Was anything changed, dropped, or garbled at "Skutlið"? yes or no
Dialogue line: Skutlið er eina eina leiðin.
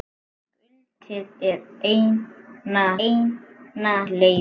no